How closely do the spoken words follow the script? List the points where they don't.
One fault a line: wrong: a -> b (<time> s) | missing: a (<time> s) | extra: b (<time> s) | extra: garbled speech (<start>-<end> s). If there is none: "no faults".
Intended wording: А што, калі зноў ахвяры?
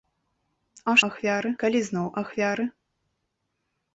wrong: што -> ахвяры (1.1 s)